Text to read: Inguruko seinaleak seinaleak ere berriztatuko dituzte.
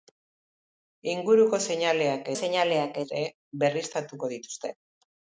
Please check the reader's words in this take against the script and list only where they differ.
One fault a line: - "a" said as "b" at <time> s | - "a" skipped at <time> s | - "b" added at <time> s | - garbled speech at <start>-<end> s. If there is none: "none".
none